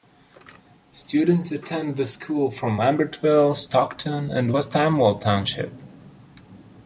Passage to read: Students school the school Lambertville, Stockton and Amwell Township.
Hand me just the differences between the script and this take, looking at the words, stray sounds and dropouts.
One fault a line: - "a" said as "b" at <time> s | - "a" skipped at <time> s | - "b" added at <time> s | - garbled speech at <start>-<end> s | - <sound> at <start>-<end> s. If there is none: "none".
- "school" said as "attend" at 1.5 s
- "from" added at 2.5 s
- "West" added at 4.5 s